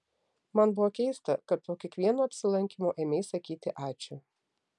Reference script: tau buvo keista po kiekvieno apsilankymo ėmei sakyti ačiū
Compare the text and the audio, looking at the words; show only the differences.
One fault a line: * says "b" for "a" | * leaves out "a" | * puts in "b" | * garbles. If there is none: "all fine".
* says "man" for "tau"
* puts in "kad"